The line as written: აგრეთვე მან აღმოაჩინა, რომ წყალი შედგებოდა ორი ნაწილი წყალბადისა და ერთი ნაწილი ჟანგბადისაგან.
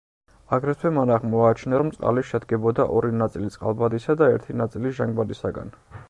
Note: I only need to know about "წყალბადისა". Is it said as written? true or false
true